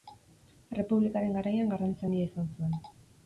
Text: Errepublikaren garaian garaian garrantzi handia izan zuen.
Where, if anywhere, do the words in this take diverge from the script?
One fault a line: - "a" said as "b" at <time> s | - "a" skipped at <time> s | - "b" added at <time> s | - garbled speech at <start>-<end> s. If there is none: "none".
- "garaian" skipped at 1.7 s